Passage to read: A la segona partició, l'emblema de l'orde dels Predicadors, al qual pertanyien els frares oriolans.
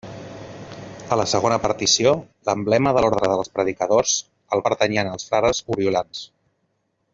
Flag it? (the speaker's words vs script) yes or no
yes